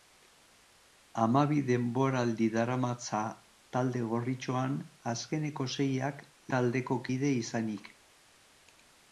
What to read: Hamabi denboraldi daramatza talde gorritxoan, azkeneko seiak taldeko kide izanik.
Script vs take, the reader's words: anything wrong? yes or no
no